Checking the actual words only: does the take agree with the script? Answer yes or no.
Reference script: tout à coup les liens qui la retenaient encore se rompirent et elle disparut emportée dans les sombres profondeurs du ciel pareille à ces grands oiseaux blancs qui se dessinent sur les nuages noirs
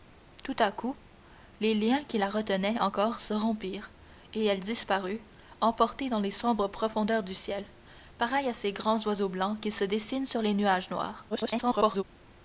no